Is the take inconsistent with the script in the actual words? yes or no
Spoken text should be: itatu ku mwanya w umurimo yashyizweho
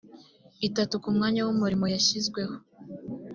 no